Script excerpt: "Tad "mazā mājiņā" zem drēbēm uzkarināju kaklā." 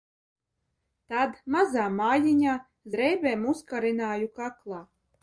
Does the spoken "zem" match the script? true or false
false